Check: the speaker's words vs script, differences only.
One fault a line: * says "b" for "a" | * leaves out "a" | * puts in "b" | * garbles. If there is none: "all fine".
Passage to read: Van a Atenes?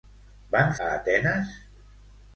all fine